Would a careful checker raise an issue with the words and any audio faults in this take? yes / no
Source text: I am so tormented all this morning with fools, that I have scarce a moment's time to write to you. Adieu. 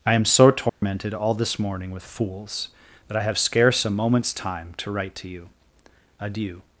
yes